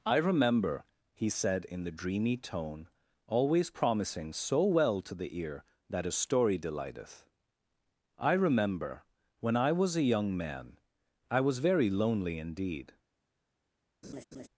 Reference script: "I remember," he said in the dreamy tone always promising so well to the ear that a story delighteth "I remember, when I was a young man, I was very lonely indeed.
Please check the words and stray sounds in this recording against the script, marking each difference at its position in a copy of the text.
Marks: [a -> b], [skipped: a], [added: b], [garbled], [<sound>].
"I remember," he said in the dreamy tone always promising so well to the ear that a story delighteth "I remember, when I was a young man, I was very lonely indeed. [laugh]